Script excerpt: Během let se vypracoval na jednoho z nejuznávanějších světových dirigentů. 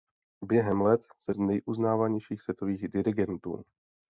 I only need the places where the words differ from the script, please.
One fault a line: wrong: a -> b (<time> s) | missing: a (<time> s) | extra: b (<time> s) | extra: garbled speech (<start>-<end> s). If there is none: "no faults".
missing: vypracoval na jednoho (1.3 s)